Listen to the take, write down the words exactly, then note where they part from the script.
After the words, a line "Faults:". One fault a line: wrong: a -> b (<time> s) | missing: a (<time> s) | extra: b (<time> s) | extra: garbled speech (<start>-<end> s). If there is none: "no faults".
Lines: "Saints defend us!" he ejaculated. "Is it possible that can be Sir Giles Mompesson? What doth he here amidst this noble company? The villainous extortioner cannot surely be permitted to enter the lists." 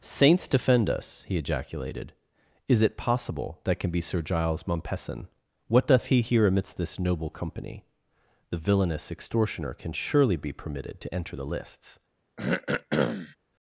"Saints defend us!" he ejaculated. "Is it possible that can be Sir Giles Mompesson? What doth he here amidst this noble company? The villainous extortioner can surely be permitted to enter the lists."
Faults:
wrong: cannot -> can (9.7 s)